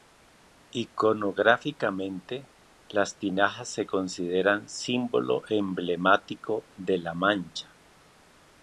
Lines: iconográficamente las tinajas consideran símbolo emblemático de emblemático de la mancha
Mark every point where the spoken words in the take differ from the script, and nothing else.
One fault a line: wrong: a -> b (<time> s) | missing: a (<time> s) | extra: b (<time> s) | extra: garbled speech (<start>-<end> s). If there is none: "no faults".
extra: se (3.7 s)
missing: emblemático de (7.0 s)